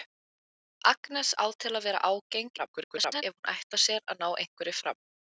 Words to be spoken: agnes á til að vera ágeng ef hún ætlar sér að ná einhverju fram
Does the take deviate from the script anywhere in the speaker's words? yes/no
yes